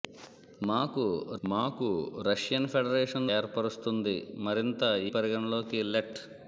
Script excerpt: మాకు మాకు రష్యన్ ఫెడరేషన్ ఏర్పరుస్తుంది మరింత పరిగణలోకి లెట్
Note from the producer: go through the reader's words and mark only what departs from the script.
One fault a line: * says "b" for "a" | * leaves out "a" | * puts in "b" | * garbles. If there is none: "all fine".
all fine